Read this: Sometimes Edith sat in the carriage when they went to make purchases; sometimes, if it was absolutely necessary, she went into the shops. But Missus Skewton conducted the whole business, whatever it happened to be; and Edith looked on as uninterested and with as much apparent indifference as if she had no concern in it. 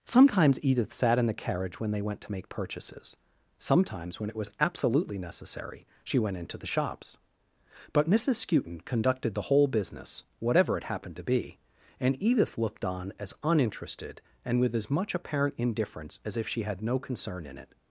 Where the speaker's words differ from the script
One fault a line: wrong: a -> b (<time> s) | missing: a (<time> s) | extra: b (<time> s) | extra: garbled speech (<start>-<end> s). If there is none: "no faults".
wrong: if -> when (4.2 s)